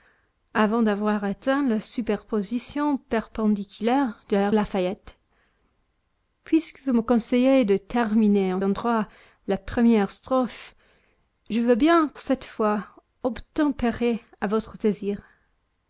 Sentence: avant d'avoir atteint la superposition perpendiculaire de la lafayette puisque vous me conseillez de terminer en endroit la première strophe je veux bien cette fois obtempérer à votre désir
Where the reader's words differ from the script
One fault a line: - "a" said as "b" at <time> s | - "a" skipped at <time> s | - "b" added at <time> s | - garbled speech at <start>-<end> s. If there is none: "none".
none